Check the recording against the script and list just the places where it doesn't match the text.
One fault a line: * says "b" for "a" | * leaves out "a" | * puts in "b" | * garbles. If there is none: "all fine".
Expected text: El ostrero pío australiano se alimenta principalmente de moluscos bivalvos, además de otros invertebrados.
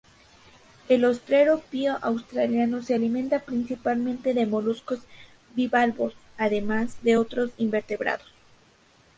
all fine